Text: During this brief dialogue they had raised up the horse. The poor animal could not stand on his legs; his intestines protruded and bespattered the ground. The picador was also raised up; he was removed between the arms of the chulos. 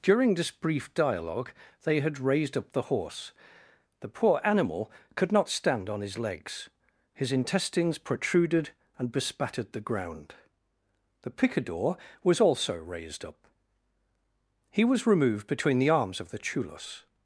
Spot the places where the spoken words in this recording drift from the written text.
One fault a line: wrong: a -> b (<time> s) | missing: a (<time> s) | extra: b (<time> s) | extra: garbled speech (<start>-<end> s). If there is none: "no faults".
no faults